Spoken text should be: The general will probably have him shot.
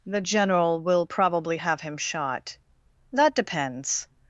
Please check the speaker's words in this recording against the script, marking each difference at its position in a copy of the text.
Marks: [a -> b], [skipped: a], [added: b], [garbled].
The general will probably have him shot. [added: That depends]